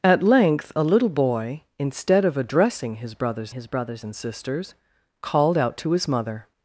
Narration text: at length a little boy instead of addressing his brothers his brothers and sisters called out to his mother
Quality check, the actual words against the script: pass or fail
pass